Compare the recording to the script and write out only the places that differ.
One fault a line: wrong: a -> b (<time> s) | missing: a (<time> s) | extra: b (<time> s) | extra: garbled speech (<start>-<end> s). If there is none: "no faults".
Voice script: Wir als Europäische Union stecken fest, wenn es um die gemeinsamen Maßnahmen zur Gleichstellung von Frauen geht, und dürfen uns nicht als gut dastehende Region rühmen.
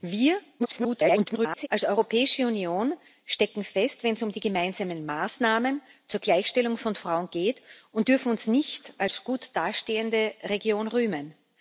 extra: garbled speech (0.6-1.7 s)